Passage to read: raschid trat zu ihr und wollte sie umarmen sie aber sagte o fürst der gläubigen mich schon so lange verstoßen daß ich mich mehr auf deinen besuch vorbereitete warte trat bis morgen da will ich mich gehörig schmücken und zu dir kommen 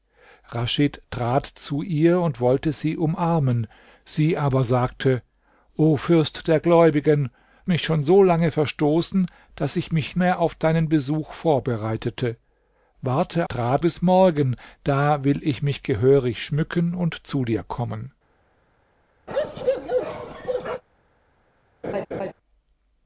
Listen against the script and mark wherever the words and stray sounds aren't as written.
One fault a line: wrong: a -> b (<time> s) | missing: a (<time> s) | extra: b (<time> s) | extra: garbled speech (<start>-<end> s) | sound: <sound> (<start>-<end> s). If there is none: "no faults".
sound: bark (19.3-20.8 s)
sound: laugh (21.8-22.3 s)